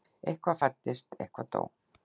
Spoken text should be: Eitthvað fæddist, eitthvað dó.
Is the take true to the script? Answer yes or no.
yes